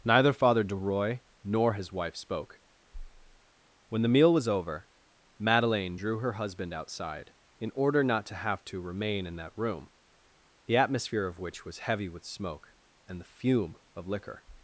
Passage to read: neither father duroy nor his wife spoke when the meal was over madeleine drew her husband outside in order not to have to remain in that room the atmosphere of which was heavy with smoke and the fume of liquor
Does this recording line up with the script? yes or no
yes